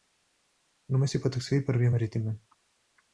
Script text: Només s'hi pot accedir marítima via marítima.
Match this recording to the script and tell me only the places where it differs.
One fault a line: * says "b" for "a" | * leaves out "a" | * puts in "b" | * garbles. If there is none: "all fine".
* says "per" for "marítima"